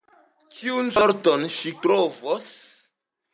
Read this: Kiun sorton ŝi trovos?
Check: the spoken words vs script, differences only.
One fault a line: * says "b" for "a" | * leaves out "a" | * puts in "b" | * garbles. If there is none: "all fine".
all fine